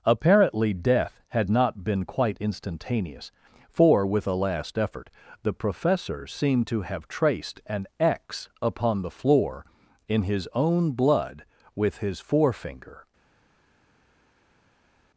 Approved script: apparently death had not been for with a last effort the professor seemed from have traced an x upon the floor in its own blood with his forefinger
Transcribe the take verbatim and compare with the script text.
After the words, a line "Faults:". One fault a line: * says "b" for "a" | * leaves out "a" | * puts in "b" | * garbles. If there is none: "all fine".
apparently death had not been quite instantaneous for with a last effort the professor seemed to have traced an x upon the floor in his own blood with his forefinger
Faults:
* puts in "quite instantaneous"
* says "to" for "from"
* says "his" for "its"